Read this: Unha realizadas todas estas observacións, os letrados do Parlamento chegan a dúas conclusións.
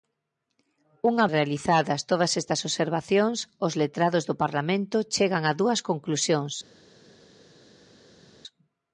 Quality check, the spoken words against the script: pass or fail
pass